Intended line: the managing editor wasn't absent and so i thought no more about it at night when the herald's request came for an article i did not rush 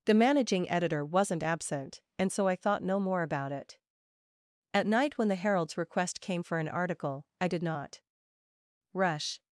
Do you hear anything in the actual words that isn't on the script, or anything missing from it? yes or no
no